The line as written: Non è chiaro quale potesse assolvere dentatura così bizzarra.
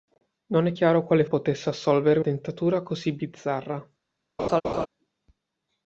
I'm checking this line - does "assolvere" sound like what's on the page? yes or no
yes